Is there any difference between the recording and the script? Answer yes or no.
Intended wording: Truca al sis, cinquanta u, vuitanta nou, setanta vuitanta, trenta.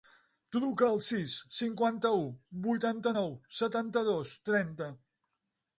yes